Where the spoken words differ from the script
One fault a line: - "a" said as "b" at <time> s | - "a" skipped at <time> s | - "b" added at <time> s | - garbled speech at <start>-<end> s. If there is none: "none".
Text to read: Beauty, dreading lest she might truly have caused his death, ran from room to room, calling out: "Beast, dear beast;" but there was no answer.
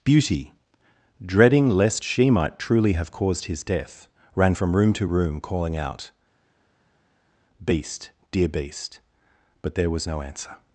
none